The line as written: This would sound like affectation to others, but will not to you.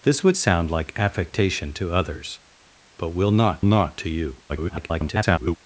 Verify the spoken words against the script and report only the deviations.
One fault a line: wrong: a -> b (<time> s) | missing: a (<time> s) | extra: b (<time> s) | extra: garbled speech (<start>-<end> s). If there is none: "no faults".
extra: not (3.6 s)
extra: garbled speech (4.5-5.6 s)